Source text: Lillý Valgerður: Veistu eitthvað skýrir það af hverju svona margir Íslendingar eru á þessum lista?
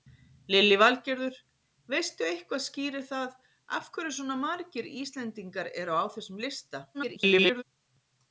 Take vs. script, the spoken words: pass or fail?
fail